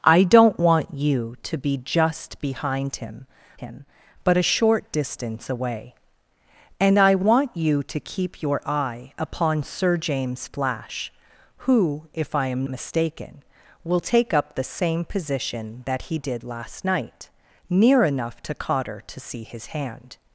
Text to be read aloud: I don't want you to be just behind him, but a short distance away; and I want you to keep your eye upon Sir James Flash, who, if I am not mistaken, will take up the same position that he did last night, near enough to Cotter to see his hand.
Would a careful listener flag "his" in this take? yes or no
no